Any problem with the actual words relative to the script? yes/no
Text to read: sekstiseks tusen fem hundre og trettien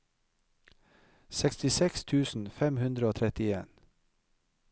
no